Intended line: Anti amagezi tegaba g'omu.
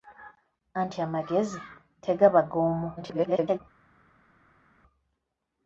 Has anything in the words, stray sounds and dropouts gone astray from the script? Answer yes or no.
yes